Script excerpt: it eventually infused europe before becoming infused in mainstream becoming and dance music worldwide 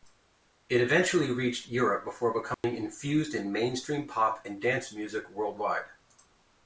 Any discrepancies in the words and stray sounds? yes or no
yes